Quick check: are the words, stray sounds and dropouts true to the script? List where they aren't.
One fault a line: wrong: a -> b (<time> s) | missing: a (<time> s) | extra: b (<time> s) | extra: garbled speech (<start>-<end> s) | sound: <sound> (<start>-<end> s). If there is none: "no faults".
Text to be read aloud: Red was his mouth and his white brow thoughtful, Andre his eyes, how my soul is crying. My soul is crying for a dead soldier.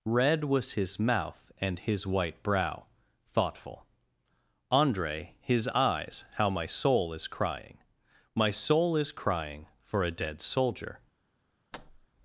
sound: thud (11.7-12.1 s)